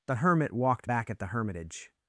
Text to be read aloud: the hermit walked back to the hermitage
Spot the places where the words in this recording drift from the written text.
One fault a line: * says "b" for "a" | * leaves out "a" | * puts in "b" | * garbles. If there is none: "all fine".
* says "at" for "to"